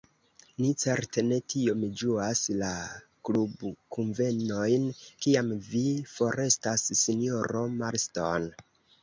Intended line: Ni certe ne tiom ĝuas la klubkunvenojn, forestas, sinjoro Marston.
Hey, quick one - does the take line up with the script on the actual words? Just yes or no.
no